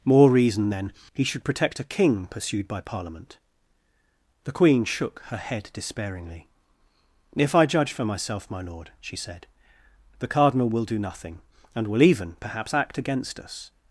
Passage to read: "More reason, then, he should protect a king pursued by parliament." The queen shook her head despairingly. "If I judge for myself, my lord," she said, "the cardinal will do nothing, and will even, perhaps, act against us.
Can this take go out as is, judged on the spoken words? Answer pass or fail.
pass